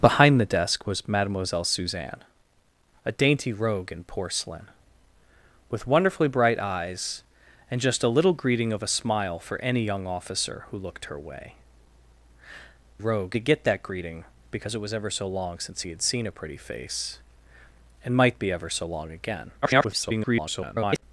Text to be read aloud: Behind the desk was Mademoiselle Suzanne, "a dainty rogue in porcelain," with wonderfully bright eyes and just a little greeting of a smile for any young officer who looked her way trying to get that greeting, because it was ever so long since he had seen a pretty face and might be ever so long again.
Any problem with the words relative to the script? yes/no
yes